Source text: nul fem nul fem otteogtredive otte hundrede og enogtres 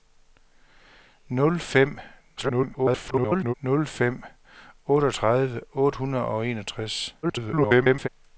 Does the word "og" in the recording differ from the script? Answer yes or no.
no